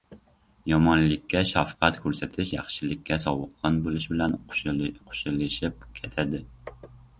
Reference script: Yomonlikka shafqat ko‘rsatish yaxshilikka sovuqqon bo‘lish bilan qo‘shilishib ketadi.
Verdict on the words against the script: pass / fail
pass